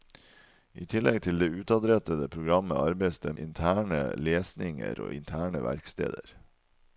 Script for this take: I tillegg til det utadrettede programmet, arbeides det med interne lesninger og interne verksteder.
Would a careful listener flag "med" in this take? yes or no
yes